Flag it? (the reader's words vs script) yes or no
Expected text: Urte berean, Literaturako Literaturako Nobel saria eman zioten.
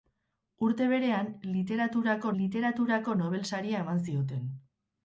no